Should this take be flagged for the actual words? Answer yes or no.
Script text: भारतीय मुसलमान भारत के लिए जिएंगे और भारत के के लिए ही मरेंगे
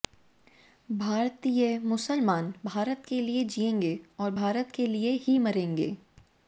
yes